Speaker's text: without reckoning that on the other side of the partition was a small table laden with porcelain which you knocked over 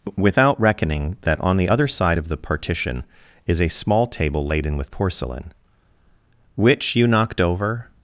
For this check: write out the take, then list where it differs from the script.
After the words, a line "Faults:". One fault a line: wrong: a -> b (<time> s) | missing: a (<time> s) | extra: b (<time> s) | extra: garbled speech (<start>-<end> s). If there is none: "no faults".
without reckoning that on the other side of the partition is a small table laden with porcelain which you knocked over
Faults:
wrong: was -> is (3.5 s)